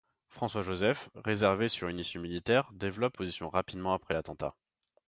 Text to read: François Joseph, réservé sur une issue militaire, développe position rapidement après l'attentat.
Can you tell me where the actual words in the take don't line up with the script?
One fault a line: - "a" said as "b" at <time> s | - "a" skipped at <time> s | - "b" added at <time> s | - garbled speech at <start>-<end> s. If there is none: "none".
none